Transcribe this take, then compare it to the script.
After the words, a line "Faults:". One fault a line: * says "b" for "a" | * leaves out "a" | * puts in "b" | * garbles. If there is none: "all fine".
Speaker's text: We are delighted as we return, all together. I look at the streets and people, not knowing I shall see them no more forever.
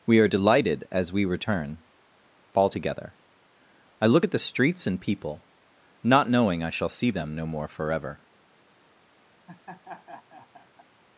We are delighted as we return, all together. I look at the streets and people, not knowing I shall see them no more forever.
Faults:
all fine